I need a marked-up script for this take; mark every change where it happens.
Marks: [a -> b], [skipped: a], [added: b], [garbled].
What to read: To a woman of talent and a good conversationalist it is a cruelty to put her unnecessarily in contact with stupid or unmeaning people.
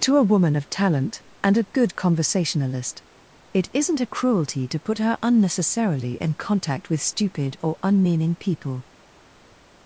To a woman of talent and a good conversationalist it [is -> isn't] a cruelty to put her unnecessarily in contact with stupid or unmeaning people.